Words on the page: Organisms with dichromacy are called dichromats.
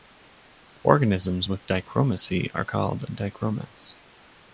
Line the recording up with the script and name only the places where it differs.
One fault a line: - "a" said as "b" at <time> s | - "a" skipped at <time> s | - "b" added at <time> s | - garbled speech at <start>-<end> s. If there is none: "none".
none